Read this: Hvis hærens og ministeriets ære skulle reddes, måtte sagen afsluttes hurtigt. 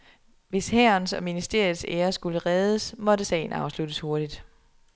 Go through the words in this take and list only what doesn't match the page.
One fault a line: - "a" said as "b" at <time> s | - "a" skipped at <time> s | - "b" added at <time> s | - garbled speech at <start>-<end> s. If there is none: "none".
none